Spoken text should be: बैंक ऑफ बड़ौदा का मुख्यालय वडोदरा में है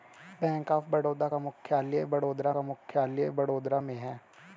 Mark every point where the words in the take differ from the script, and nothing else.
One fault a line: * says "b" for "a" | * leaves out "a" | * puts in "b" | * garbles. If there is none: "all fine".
* puts in "का मुख्यालय वडोदरा"